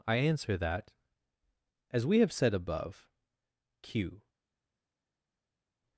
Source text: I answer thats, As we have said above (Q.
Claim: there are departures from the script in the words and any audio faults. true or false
true